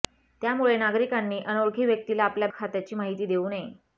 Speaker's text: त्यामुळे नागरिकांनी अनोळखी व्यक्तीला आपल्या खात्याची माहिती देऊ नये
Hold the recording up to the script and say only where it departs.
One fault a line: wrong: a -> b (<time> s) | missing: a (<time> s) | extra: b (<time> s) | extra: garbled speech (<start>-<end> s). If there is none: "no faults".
no faults